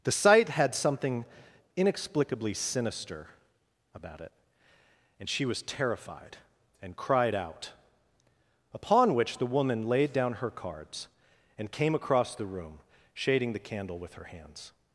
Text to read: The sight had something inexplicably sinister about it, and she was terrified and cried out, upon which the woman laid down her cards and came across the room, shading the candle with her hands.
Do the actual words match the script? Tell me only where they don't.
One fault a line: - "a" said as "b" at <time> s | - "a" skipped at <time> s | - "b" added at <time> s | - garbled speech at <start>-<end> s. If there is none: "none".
none